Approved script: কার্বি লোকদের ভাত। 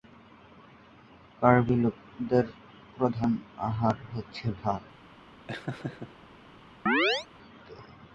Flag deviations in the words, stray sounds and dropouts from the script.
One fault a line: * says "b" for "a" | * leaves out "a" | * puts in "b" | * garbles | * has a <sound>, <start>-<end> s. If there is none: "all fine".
* puts in "প্রধান আহার হচ্ছে"
* has a laugh, 5.5-6.3 s
* has a chirp, 6.9-7.3 s